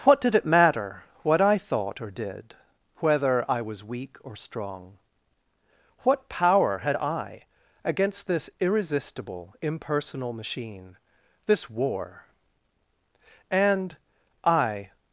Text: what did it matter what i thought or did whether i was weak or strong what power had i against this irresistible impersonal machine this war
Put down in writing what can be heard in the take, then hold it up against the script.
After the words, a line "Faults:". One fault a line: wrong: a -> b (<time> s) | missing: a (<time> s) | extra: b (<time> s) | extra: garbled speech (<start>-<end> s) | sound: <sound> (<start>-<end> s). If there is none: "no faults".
what did it matter what i thought or did whether i was weak or strong what power had i against this irresistible impersonal machine this war and i
Faults:
extra: and i (13.5 s)